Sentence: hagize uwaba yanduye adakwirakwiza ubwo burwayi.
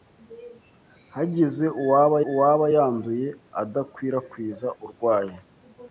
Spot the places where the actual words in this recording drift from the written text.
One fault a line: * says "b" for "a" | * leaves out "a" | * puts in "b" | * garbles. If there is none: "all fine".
* puts in "uwaba"
* leaves out "ubwo"